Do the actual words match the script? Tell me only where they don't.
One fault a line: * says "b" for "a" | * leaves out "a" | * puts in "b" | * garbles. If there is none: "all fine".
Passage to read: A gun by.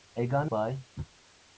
all fine